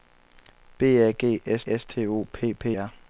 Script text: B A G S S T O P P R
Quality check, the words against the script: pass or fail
pass